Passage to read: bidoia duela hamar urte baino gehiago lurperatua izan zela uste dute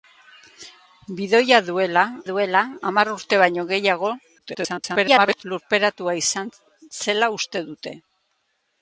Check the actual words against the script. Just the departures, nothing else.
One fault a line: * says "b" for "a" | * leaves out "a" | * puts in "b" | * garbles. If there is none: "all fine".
* puts in "duela"
* garbles